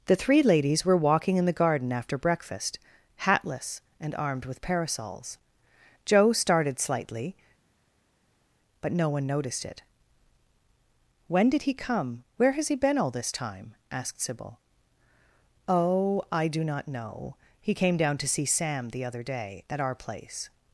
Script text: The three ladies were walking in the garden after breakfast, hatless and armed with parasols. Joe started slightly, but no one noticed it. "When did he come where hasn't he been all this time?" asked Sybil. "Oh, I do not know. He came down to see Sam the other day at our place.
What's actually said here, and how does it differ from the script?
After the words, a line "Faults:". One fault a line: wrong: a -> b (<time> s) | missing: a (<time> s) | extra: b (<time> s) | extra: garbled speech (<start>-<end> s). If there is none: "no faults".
The three ladies were walking in the garden after breakfast, hatless and armed with parasols. Joe started slightly, but no one noticed it. "When did he come where has he been all this time?" asked Sybil. "Oh, I do not know. He came down to see Sam the other day at our place.
Faults:
wrong: hasn't -> has (12.5 s)